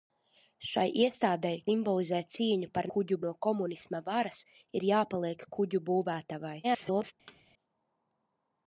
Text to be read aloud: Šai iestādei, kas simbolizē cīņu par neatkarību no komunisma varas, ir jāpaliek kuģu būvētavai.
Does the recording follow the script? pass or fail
fail